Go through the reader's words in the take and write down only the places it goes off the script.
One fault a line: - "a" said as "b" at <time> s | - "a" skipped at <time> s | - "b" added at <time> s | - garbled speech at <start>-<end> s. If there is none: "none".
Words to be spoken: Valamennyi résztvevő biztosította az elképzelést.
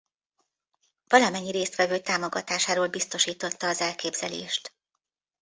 - "támogatásáról" added at 2.0 s